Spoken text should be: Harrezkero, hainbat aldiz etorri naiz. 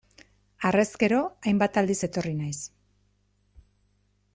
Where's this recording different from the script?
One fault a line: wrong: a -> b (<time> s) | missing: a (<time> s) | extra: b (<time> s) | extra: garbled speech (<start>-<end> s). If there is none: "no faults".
no faults